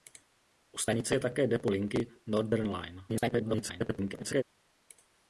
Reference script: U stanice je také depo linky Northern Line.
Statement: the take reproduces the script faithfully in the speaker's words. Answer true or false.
false